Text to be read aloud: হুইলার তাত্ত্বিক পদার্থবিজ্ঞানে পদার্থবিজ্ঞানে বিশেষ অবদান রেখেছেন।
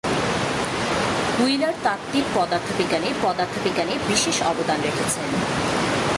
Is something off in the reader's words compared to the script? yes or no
no